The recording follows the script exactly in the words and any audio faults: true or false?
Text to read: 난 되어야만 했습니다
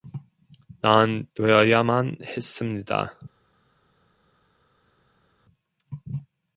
true